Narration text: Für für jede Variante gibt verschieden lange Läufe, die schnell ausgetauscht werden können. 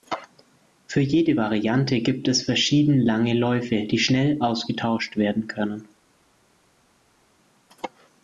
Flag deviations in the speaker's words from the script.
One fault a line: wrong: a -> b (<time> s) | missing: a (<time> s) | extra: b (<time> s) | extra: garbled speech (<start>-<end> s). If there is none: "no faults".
missing: für (1.0 s)
extra: es (2.3 s)